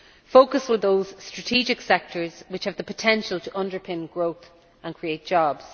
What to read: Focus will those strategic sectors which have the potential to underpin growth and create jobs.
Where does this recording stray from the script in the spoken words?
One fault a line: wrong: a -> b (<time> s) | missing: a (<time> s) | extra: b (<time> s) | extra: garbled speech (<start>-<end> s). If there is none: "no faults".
no faults